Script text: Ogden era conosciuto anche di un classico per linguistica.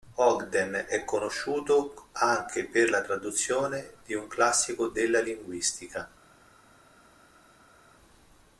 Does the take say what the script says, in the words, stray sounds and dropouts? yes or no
no